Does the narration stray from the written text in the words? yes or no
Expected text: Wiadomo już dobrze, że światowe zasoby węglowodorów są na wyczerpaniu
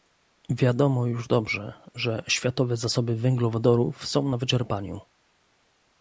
no